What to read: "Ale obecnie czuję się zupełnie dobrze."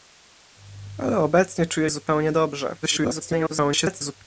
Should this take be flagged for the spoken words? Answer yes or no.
yes